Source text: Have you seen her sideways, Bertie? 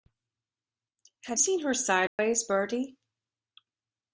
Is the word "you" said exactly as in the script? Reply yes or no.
no